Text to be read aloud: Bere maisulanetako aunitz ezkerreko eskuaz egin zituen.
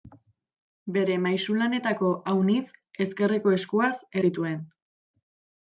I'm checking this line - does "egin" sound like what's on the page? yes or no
no